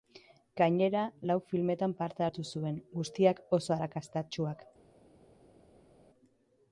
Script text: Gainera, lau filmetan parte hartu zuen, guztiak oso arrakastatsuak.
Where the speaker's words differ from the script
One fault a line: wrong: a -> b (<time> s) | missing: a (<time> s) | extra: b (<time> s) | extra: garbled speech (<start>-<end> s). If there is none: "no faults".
no faults